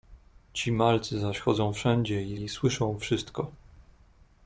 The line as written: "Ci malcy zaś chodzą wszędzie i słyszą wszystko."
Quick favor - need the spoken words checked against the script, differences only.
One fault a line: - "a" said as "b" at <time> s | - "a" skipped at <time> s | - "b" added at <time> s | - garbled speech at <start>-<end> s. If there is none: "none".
- "i" added at 2.3 s